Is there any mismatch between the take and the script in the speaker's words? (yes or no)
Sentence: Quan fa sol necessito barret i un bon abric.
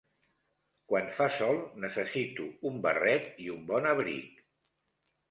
yes